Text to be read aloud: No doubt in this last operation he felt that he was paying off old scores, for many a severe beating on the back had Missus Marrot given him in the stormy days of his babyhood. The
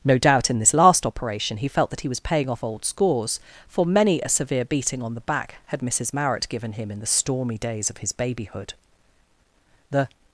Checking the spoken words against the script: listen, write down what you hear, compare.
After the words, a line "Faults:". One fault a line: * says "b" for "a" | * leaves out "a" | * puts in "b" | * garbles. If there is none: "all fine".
No doubt in this last operation he felt that he was paying off old scores, for many a severe beating on the back had Missus Marrot given him in the stormy days of his babyhood. The
Faults:
all fine